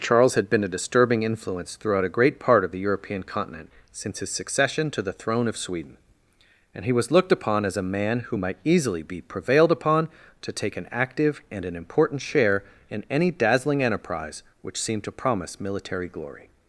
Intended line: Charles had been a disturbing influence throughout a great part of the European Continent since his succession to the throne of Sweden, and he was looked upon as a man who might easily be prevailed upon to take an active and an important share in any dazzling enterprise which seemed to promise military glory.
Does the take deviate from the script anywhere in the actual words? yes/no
no